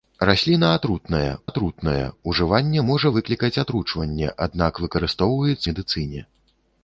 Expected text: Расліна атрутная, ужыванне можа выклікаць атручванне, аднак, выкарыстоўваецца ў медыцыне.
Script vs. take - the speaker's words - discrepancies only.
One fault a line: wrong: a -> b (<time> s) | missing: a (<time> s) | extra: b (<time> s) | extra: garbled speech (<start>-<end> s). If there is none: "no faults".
extra: атрутная (1.5 s)
missing: ў (5.7 s)